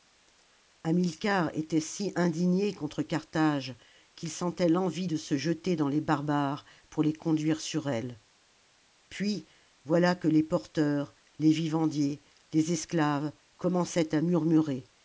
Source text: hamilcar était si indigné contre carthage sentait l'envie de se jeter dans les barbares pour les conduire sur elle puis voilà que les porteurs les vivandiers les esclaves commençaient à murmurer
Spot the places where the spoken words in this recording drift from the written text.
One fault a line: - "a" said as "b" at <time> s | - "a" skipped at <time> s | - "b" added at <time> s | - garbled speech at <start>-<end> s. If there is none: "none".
- "qu'il" added at 4.2 s